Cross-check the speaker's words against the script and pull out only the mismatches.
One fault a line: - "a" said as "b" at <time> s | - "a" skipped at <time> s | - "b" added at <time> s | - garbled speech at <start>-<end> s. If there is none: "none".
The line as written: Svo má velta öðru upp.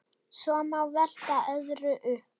none